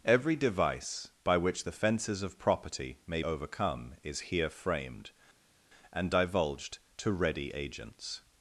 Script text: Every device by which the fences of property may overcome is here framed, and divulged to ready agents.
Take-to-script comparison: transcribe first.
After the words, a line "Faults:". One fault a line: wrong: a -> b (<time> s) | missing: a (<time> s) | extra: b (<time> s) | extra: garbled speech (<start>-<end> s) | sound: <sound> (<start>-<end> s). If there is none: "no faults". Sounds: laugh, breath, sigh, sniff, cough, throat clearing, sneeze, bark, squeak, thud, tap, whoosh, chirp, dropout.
Every device by which the fences of property may overcome is here framed, and divulged to ready agents.
Faults:
no faults